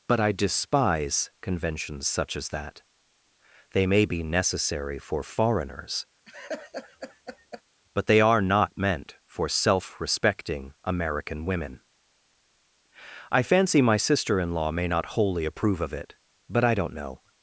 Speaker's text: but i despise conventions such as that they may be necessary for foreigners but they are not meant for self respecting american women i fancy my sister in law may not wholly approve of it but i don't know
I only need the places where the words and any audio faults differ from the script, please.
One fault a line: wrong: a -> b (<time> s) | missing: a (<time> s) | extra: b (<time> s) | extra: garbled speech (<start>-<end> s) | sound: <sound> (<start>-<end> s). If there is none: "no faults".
sound: laugh (6.2-7.6 s)